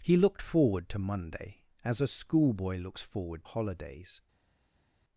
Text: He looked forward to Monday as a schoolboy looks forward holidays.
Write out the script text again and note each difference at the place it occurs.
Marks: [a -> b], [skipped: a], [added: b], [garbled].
He looked forward to Monday as a schoolboy looks forward holidays.